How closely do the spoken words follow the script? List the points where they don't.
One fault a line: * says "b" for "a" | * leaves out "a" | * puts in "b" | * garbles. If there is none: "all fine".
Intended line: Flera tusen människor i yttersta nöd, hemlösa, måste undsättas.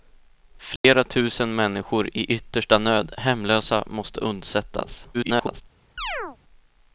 * garbles